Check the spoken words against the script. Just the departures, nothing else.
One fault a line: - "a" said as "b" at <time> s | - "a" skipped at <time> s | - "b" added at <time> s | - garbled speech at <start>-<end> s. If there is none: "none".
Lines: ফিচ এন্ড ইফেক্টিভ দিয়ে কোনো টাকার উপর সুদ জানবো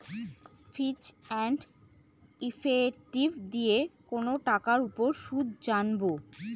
none